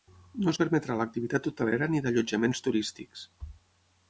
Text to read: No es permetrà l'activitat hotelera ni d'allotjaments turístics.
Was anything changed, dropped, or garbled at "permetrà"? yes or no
no